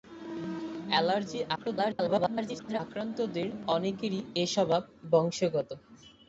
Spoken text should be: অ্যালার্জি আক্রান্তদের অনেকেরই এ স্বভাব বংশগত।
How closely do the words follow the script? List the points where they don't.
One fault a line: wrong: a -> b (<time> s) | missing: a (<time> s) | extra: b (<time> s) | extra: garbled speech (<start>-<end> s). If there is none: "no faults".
extra: garbled speech (1.5-2.8 s)